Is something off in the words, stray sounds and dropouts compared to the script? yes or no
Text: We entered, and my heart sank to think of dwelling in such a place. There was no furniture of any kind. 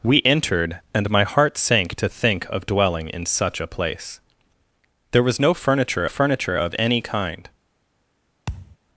yes